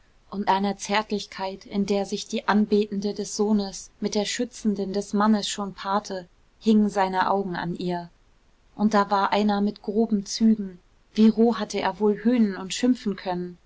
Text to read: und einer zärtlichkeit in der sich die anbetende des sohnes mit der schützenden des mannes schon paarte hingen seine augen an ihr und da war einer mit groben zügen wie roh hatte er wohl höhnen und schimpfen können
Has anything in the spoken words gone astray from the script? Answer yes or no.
no